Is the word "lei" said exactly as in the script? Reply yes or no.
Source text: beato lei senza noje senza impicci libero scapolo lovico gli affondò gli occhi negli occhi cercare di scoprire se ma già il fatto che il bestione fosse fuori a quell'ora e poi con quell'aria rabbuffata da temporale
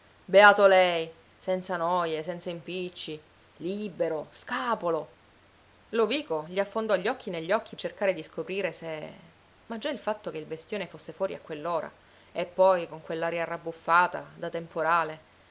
yes